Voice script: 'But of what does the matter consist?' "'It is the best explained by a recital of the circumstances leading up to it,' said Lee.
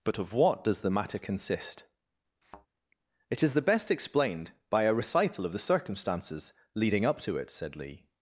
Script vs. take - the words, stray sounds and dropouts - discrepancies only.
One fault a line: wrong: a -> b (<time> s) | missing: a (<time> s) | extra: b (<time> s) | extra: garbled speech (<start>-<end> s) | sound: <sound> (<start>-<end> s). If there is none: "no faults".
sound: thud (2.4-2.7 s)